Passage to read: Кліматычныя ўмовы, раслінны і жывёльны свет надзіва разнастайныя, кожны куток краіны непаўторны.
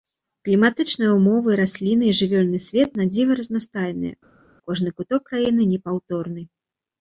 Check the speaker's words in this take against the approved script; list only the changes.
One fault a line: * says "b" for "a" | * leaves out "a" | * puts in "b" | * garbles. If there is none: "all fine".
all fine